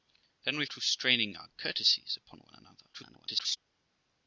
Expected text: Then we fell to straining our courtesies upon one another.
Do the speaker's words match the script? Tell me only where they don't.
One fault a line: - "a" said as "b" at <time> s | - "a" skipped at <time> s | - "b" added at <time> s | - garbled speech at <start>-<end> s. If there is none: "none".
- "fell" skipped at 0.7 s
- garbled speech at 2.9-3.6 s